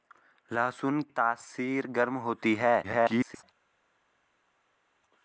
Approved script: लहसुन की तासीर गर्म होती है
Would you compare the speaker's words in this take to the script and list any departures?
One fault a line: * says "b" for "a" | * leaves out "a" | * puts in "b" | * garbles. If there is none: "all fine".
* leaves out "की"
* garbles